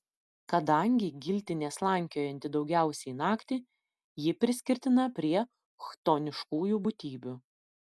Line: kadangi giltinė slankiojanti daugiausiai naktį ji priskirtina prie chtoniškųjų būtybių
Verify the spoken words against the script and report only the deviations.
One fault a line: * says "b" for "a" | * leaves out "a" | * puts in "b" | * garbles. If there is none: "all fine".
all fine